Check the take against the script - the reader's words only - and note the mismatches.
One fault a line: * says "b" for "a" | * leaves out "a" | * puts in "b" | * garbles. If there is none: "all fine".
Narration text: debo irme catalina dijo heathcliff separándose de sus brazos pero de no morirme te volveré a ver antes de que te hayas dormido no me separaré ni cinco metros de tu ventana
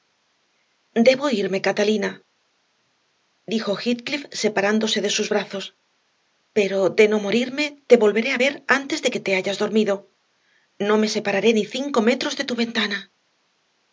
all fine